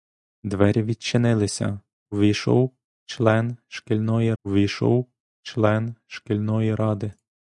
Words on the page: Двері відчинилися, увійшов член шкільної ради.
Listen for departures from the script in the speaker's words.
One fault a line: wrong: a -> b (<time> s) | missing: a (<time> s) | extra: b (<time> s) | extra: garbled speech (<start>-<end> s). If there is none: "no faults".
extra: увійшов член шкільної (4.4 s)